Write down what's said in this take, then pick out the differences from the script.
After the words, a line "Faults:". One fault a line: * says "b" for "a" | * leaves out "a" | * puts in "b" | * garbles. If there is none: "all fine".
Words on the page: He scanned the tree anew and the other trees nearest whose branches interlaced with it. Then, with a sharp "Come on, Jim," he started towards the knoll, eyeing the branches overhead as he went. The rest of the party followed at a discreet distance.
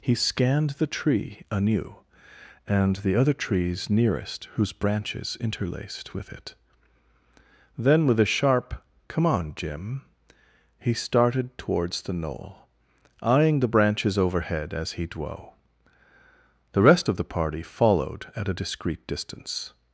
He scanned the tree anew and the other trees nearest whose branches interlaced with it. Then, with a sharp "Come on, Jim," he started towards the knoll, eyeing the branches overhead as he dwo. The rest of the party followed at a discreet distance.
Faults:
* says "dwo" for "went"